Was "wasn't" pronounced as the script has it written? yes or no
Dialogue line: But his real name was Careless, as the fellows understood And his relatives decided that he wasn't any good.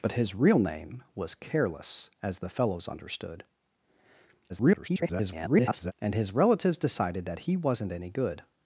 yes